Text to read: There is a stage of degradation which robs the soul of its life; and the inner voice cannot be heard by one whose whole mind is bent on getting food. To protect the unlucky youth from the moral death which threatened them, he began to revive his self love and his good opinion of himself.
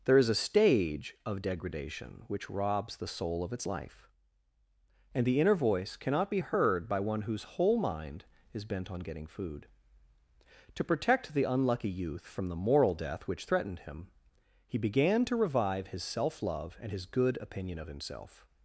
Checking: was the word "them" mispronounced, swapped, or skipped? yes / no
yes